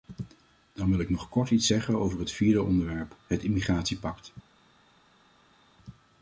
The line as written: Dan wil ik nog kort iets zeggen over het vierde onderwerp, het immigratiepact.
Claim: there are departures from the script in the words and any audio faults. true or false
false